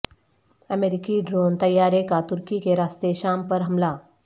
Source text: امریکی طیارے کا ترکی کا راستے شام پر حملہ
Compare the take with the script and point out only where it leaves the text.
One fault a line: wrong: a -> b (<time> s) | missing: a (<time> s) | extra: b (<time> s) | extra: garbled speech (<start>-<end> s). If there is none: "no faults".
extra: ڈرون (1.3 s)
wrong: کا -> کے (2.6 s)